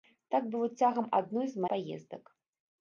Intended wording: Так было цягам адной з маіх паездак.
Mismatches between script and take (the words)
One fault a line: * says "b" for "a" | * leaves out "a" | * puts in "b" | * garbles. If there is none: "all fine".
* leaves out "маіх"